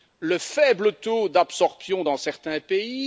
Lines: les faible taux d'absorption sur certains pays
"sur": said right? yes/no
no